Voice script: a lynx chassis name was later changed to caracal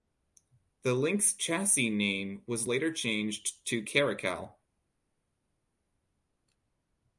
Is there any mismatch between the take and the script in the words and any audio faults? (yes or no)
yes